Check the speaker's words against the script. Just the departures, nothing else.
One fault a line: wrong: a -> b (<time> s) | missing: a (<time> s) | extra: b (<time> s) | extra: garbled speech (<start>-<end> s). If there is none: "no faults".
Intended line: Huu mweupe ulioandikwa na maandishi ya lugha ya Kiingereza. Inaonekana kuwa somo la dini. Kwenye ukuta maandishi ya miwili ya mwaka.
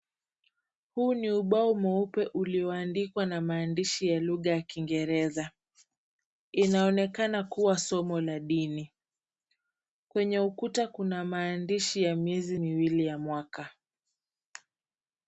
extra: ni ubao (1.1 s)
extra: kuna (10.9 s)
extra: miezi (12.2 s)